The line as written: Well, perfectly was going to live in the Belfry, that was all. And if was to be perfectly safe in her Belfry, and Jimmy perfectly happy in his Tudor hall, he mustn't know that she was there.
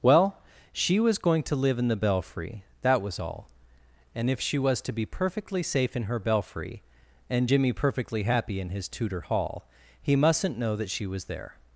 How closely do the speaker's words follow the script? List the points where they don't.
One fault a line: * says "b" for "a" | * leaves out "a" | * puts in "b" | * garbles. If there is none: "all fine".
* says "she" for "perfectly"
* puts in "she"